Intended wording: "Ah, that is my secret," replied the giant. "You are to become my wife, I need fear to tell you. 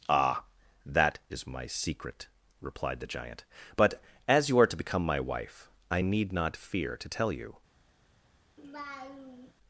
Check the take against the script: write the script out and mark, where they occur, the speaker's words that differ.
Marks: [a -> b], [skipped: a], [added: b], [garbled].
"Ah, that is my secret," replied the giant. [added: But as] "You are to become my wife, I need [added: not] fear to tell you.